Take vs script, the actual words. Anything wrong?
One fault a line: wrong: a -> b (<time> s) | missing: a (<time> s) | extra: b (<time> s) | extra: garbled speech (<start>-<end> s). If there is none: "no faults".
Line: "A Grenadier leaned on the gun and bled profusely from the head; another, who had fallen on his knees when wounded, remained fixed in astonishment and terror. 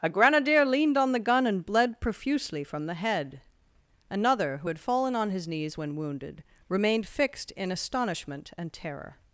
no faults